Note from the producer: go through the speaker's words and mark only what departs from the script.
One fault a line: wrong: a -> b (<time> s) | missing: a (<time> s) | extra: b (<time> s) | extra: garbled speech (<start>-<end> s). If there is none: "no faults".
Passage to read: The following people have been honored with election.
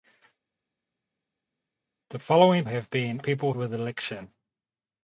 missing: people (2.7 s)
wrong: honored -> people (3.2 s)